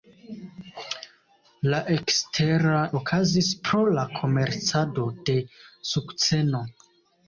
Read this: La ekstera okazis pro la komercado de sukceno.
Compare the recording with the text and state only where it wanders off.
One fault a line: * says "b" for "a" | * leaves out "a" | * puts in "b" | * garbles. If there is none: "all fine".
all fine